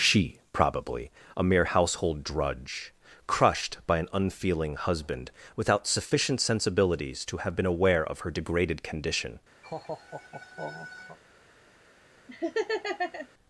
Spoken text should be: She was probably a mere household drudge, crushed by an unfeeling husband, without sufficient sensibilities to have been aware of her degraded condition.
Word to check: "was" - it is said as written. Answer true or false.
false